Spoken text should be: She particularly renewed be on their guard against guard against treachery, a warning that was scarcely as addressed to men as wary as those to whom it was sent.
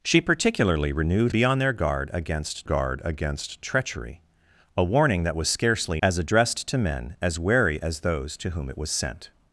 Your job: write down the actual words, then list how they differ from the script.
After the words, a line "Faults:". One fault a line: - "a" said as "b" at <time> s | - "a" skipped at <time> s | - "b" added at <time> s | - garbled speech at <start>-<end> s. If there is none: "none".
She particularly renewed be on their guard against guard against treachery, a warning that was scarcely as addressed to men as wary as those to whom it was sent.
Faults:
none